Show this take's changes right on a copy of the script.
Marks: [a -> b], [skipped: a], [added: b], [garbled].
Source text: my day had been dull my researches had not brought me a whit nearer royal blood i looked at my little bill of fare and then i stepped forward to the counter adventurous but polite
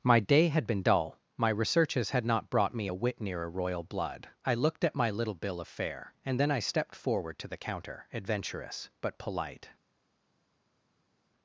my day had been dull my researches had not brought me a whit nearer royal blood i looked at my little bill of fare and then i stepped forward to the counter adventurous but polite